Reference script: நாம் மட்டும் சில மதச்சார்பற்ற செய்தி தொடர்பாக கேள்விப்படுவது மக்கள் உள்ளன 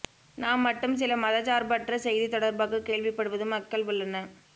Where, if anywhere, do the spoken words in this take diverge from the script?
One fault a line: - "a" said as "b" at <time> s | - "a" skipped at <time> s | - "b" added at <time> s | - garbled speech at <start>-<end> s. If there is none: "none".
none